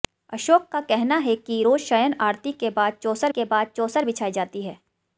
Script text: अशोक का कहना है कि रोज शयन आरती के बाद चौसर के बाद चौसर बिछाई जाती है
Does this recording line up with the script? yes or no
yes